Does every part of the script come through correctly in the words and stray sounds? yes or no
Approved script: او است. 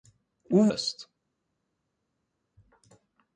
yes